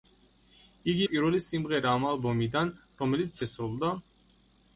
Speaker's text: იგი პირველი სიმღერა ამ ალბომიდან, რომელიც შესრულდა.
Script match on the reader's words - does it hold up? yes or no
yes